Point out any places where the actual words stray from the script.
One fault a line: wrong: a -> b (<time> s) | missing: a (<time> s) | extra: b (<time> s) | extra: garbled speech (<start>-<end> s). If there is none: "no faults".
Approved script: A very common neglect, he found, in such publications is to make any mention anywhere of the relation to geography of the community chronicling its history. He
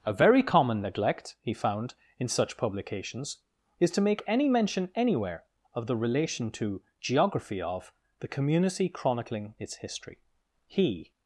no faults